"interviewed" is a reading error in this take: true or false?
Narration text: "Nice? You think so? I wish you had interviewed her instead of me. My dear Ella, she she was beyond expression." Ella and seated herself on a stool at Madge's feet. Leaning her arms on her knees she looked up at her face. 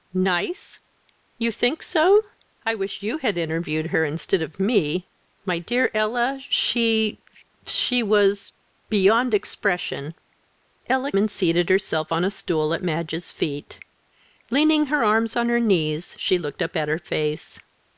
false